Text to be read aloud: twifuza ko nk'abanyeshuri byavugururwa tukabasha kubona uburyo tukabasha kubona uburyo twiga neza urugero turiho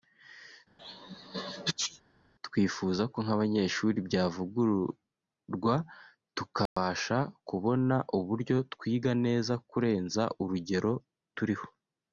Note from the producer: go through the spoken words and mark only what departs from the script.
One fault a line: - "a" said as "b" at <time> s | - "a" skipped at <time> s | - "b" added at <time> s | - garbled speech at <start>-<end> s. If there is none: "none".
- "tukabasha kubona uburyo" skipped at 8.6 s
- "kurenza" added at 9.7 s